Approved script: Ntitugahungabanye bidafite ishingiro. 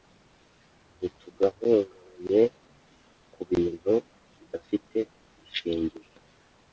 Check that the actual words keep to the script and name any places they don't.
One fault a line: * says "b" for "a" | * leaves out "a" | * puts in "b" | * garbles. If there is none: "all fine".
* puts in "kubintu"